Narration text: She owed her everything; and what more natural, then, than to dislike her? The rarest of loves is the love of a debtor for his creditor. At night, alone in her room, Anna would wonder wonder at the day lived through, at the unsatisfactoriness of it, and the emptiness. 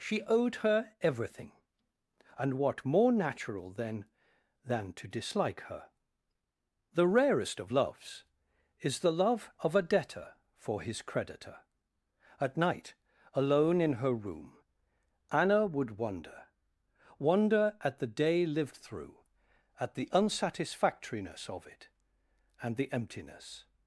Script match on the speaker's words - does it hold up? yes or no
yes